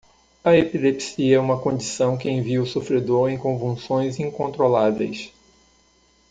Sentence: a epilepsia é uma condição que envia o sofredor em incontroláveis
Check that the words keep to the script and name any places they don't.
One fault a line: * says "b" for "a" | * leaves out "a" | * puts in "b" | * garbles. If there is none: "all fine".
* puts in "convulsões"